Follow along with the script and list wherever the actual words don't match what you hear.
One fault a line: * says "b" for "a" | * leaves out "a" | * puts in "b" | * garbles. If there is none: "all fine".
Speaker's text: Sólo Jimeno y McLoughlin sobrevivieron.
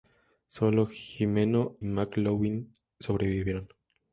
* leaves out "y"